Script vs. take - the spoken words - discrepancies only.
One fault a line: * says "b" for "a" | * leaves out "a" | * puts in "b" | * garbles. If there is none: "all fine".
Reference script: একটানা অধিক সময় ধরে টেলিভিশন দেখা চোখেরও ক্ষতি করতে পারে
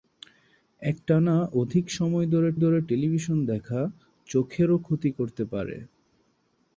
* puts in "ধরে"